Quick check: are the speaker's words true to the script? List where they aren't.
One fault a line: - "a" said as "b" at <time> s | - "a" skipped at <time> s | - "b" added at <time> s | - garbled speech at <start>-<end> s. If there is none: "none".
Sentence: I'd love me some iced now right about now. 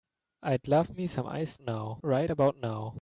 none